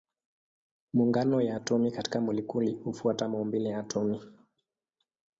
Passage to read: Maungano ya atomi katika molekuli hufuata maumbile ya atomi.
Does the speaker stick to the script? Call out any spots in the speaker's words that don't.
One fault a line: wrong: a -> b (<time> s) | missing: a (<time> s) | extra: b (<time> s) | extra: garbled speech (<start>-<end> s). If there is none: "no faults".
no faults